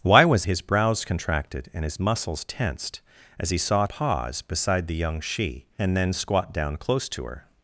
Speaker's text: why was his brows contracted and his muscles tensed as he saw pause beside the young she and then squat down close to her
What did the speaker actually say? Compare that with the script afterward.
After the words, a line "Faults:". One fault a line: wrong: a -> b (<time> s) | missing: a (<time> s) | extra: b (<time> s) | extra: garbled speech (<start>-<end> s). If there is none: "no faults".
why was his brows contracted and his muscles tensed as he saw pause beside the young she and then squat down close to her
Faults:
no faults